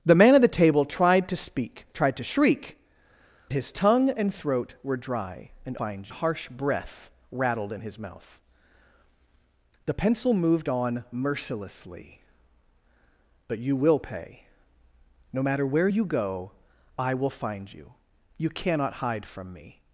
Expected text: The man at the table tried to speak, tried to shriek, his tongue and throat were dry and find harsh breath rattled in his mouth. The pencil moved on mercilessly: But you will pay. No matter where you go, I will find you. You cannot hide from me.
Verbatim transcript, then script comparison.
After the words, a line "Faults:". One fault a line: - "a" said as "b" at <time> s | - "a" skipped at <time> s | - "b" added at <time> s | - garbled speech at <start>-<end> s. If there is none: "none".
The man at the table tried to speak, tried to shriek, his tongue and throat were dry and find harsh breath rattled in his mouth. The pencil moved on mercilessly: But you will pay. No matter where you go, I will find you. You cannot hide from me.
Faults:
none